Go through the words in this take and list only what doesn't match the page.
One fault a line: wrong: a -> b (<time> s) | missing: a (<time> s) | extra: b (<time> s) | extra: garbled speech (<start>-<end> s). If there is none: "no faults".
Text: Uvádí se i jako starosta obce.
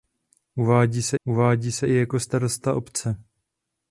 extra: uvádí se (1.2 s)